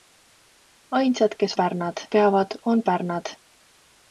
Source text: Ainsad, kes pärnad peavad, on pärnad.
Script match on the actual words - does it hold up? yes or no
yes